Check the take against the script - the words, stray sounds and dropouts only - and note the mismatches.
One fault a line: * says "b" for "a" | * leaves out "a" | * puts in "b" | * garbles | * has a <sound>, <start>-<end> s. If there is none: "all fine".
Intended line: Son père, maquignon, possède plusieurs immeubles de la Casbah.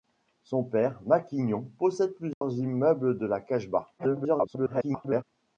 * has a dropout, 2.3-2.4 s
* garbles